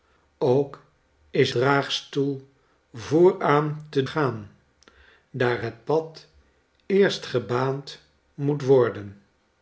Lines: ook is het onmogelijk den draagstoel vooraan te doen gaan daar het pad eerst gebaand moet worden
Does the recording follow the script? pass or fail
fail